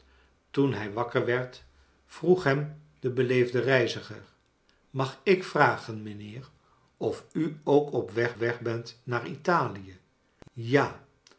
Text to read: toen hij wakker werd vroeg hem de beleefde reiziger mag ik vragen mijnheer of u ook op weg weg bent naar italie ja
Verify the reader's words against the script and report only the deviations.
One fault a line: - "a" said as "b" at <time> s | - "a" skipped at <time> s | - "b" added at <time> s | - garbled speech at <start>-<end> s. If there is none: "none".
none